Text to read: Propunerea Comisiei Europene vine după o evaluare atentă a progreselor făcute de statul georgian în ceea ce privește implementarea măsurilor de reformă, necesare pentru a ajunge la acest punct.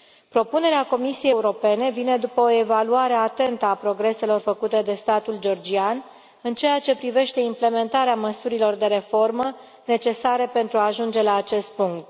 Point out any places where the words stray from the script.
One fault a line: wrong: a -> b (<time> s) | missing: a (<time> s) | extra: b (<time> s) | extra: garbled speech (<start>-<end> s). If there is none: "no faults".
no faults